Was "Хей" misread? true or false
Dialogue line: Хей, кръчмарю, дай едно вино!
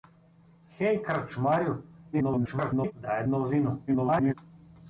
false